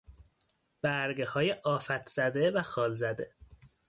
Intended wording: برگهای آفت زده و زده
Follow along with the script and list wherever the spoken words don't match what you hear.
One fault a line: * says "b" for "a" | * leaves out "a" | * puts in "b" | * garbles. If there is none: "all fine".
* puts in "خال"